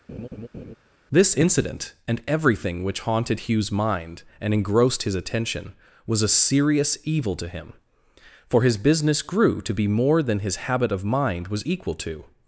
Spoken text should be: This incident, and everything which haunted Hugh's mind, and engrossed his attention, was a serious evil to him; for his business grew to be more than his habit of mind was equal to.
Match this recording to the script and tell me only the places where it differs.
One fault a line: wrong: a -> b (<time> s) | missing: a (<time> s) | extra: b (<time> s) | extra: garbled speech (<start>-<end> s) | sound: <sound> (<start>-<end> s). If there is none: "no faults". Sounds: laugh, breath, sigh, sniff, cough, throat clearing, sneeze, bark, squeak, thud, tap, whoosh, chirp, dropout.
sound: laugh (0.1-0.8 s)